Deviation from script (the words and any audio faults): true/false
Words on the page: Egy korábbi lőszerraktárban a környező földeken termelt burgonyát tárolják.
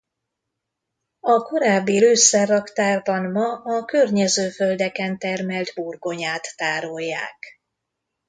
true